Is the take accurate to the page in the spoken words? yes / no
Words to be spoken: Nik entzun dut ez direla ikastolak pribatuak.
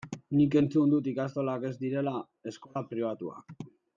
no